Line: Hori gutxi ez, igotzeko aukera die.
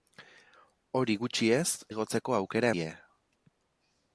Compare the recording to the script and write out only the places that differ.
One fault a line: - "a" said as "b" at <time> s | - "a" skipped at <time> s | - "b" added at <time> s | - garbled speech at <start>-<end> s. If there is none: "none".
none